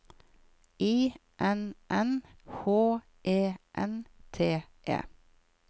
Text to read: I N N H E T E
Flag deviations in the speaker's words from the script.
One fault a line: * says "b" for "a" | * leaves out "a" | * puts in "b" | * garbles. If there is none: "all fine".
* puts in "N"